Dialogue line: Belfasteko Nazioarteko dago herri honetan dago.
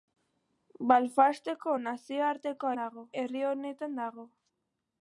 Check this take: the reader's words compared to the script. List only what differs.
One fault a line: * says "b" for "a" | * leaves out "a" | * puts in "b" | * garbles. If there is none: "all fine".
all fine